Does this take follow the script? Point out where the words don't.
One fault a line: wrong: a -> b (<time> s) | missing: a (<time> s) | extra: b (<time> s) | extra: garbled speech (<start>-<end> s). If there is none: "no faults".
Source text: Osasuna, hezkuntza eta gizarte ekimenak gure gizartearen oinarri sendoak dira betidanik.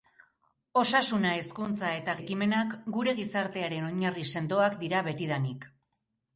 missing: gizarte (2.1 s)